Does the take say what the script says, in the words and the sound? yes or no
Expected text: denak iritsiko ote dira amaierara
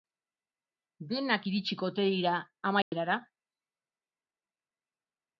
no